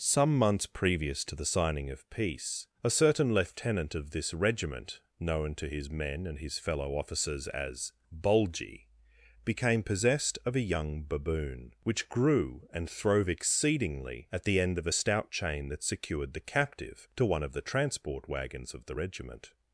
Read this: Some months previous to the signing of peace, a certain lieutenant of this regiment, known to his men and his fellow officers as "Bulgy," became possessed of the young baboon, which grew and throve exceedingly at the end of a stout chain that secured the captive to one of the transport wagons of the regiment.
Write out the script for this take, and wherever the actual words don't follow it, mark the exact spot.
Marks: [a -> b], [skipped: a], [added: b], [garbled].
Some months previous to the signing of peace, a certain lieutenant of this regiment, known to his men and his fellow officers as "Bulgy," became possessed of [the -> a] young baboon, which grew and throve exceedingly at the end of a stout chain that secured the captive to one of the transport wagons of the regiment.